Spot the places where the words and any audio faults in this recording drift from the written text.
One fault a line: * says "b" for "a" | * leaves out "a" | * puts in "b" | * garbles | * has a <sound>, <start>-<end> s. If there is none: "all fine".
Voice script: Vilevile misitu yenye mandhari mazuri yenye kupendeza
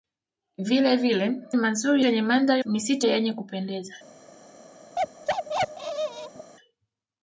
* says "mazuri" for "misitu"
* says "misitu" for "mazuri"
* has a bark, 5.0-6.5 s